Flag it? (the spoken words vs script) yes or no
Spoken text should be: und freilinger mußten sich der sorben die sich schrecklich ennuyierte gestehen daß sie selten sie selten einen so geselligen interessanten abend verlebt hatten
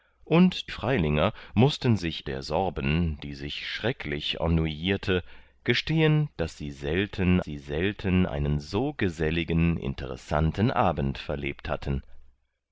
no